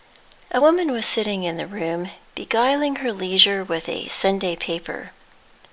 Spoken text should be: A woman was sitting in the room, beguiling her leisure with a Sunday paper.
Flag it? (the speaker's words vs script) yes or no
no